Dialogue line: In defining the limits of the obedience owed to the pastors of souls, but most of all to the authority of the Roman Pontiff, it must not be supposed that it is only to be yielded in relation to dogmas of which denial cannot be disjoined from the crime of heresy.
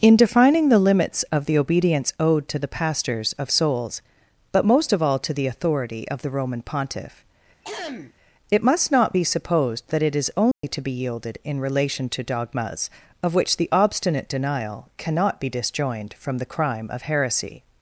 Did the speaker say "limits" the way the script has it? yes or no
yes